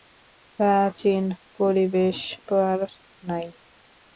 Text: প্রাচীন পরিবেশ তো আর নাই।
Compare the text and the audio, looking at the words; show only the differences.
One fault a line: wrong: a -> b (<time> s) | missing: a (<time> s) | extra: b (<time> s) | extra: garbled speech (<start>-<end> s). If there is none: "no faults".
no faults